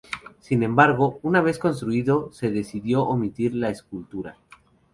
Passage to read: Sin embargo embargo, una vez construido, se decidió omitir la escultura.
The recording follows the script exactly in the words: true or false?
false